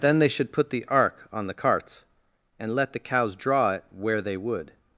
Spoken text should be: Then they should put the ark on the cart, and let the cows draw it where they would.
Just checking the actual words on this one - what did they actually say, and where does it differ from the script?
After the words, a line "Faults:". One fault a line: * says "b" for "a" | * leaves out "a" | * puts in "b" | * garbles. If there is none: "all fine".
Then they should put the ark on the carts, and let the cows draw it where they would.
Faults:
* says "carts" for "cart"